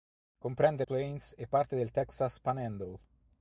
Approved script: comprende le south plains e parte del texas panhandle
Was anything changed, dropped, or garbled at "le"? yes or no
yes